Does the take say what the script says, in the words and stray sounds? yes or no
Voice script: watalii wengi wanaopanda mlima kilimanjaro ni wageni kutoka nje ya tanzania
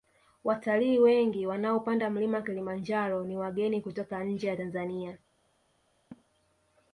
no